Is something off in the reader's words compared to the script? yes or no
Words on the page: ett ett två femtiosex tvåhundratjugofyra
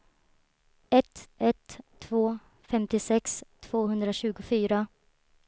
no